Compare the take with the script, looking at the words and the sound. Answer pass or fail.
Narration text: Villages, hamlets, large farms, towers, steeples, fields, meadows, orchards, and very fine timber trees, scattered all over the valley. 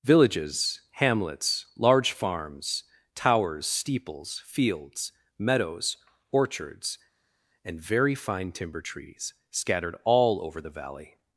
pass